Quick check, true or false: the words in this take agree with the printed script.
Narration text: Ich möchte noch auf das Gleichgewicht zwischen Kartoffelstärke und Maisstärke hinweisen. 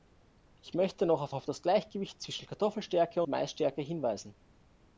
false